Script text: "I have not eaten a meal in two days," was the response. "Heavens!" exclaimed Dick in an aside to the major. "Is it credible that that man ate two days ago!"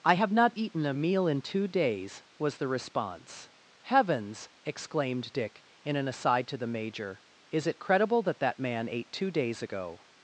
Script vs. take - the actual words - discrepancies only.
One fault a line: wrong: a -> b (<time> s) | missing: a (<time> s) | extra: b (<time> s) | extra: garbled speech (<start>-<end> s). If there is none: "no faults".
no faults